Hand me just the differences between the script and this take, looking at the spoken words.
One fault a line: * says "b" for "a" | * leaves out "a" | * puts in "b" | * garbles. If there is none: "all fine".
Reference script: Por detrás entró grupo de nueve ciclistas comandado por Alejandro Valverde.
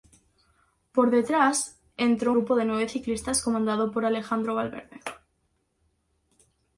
all fine